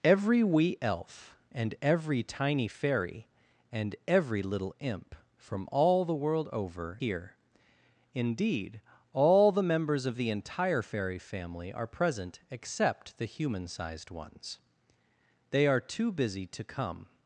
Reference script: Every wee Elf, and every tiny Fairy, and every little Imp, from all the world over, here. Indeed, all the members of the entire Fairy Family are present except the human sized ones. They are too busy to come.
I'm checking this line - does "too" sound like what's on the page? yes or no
yes